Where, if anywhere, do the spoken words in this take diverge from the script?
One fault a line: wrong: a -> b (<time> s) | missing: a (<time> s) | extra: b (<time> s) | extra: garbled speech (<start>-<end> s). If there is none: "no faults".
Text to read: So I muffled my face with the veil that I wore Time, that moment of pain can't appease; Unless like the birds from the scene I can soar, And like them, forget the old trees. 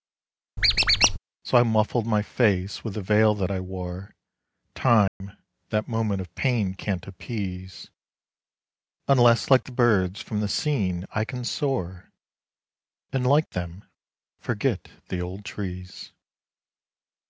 no faults